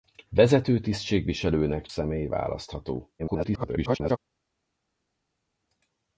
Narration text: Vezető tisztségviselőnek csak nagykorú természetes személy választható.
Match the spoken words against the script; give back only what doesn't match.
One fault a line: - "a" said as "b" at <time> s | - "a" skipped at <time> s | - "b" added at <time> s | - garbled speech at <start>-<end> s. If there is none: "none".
- "csak nagykorú természetes" skipped at 1.9 s
- garbled speech at 3.2-4.2 s